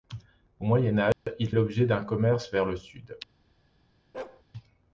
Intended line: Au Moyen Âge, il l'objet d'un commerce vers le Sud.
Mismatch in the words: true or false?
false